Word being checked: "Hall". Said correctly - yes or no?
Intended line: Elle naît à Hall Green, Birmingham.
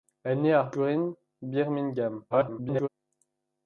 no